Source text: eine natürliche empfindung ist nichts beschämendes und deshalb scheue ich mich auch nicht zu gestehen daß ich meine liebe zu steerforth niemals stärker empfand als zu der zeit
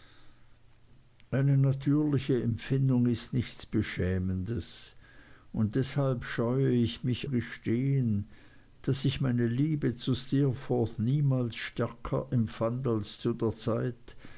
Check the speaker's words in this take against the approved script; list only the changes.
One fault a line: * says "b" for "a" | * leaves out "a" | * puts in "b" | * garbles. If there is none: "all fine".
* leaves out "auch nicht zu"